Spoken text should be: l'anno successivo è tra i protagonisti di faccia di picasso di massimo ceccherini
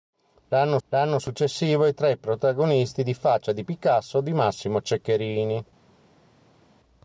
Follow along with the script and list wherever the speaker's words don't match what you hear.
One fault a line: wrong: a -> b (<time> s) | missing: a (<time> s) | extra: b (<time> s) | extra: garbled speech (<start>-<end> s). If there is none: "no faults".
extra: l'anno (0.9 s)